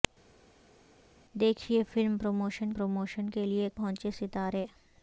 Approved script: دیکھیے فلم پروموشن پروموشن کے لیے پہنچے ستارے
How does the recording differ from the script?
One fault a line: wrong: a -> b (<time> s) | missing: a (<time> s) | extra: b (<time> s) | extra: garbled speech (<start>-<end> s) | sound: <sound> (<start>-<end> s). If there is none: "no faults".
no faults